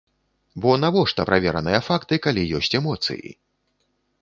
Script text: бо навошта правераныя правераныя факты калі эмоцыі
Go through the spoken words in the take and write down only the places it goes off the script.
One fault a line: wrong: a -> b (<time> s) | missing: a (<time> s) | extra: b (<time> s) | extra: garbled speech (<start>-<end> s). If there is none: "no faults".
missing: правераныя (1.8 s)
extra: ёсць (2.6 s)